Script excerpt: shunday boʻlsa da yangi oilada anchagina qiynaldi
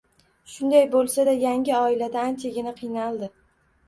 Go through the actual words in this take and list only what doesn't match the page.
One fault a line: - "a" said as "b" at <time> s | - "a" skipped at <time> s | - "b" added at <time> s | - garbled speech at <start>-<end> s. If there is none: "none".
none